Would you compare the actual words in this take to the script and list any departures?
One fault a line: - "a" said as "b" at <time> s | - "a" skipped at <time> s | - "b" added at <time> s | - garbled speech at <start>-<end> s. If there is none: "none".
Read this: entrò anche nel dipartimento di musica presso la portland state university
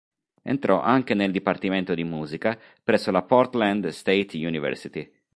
none